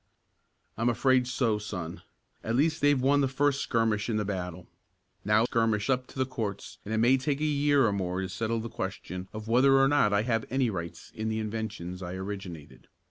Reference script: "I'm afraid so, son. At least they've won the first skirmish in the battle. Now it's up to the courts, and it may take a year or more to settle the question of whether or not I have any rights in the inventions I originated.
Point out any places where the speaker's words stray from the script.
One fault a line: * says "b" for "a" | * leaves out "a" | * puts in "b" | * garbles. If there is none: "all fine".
* says "skirmish" for "it's"